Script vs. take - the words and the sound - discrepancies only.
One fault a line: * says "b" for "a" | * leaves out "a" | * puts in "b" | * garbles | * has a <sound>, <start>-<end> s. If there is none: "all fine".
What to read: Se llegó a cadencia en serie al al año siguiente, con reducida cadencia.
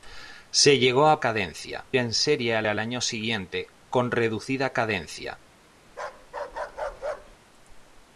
* has a bark, 5.9-7.4 s